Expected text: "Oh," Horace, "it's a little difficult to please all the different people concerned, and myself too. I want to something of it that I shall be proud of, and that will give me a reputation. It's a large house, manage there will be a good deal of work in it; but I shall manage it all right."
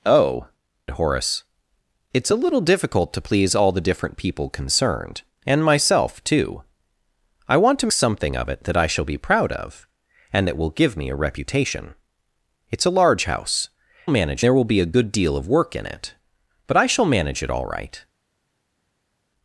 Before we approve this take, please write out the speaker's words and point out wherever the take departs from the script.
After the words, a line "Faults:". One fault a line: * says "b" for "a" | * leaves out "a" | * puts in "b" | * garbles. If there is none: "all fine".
"Oh," Horace, "it's a little difficult to please all the different people concerned, and myself too. I want to something of it that I shall be proud of, and that will give me a reputation. It's a large house, manage there will be a good deal of work in it; but I shall manage it all right."
Faults:
all fine